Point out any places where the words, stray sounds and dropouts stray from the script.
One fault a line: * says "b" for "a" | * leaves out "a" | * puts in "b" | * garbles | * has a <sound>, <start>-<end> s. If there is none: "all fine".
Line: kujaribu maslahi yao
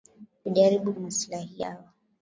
all fine